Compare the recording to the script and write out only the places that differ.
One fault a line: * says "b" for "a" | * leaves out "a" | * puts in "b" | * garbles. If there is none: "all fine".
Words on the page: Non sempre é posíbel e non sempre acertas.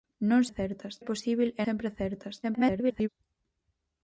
* says "acertas" for "sempre"
* leaves out "non"
* garbles